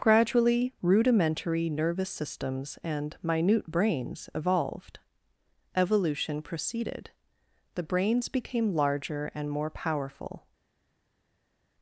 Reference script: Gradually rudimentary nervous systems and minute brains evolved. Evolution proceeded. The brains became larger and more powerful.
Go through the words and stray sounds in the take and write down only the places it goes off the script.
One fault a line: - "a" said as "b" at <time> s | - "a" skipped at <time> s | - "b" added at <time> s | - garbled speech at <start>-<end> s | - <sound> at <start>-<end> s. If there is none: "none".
none